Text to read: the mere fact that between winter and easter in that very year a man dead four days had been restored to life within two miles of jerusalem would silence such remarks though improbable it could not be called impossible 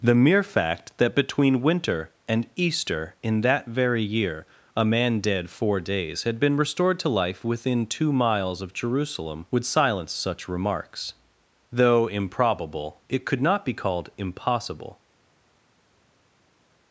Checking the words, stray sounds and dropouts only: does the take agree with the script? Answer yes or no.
yes